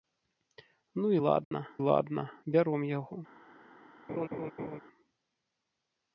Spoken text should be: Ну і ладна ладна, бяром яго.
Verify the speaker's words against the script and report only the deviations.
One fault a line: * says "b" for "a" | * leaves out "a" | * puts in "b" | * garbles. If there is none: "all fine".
all fine